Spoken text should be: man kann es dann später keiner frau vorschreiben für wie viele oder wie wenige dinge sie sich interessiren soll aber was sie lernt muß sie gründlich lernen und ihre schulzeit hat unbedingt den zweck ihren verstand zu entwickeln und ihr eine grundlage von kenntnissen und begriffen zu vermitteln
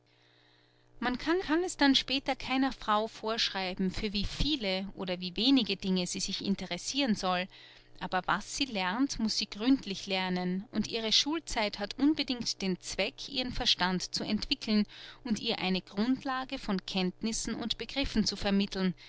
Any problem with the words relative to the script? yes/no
yes